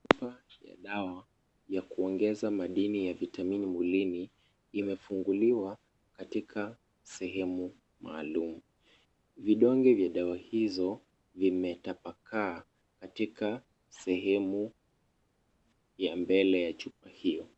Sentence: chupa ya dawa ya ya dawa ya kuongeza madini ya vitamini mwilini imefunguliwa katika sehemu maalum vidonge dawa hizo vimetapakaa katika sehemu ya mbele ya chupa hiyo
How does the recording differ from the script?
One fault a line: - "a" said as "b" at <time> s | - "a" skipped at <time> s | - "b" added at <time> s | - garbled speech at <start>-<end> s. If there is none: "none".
- "ya dawa ya" skipped at 1.8 s
- "vya" added at 9.9 s